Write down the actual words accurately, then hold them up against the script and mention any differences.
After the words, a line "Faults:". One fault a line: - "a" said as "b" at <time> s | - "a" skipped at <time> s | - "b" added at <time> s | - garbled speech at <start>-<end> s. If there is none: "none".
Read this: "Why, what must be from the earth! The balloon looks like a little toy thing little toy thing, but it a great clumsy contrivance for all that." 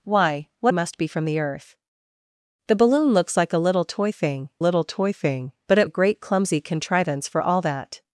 "Why, what must be from the earth! The balloon looks like a little toy thing little toy thing, but it a great clumsy contrivance for all that."
Faults:
none